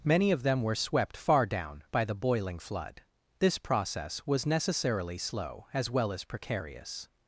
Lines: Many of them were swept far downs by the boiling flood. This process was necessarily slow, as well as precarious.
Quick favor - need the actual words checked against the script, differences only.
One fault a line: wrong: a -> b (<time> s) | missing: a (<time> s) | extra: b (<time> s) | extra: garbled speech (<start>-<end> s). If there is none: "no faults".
wrong: downs -> down (1.4 s)